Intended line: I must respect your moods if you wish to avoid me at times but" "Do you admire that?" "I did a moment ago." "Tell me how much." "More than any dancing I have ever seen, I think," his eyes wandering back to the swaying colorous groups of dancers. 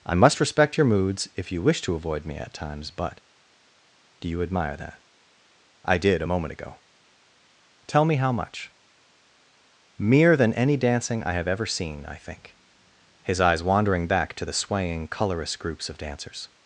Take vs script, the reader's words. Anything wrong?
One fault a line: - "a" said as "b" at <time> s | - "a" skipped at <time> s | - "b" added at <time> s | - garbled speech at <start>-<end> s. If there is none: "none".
- "More" said as "Mere" at 10.0 s